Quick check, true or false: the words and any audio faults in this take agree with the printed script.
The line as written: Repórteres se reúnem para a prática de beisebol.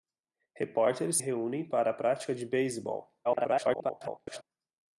false